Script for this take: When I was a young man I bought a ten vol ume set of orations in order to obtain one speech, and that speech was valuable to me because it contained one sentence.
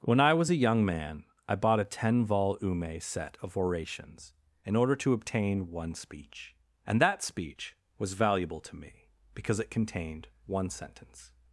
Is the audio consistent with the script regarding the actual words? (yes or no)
yes